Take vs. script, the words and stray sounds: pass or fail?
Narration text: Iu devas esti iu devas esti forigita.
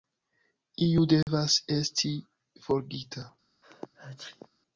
fail